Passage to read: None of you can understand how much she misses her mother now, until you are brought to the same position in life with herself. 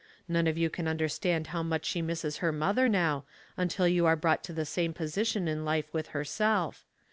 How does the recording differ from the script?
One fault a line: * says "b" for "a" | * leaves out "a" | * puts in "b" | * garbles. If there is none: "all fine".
all fine